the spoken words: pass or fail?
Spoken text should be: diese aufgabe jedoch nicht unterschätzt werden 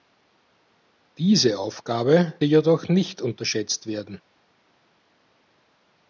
pass